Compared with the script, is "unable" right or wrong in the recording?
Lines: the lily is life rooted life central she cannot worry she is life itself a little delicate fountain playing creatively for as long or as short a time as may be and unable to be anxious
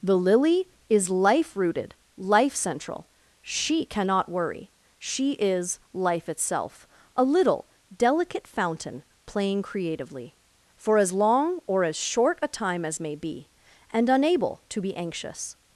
right